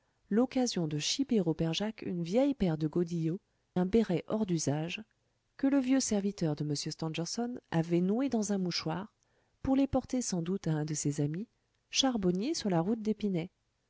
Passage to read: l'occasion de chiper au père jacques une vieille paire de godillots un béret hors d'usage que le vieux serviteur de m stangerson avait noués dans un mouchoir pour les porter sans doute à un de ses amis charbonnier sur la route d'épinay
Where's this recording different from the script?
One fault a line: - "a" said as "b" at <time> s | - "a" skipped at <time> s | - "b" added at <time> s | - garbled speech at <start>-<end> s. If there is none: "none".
none